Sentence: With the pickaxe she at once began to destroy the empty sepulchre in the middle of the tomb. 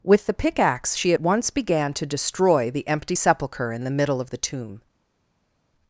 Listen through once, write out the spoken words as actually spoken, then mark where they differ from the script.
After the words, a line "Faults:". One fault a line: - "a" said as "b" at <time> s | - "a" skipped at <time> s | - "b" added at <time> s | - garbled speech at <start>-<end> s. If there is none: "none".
With the pickaxe she at once began to destroy the empty sepulchre in the middle of the tomb.
Faults:
none